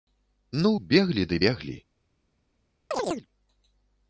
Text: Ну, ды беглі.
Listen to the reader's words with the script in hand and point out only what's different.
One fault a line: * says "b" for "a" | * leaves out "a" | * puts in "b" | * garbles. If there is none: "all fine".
* puts in "беглі"